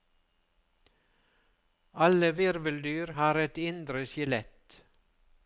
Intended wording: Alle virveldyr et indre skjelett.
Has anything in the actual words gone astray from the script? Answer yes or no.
yes